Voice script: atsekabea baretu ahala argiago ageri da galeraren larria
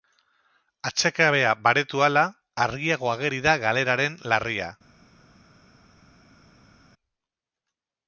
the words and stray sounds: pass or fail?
pass